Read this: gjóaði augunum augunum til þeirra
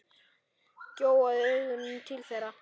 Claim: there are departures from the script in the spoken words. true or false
true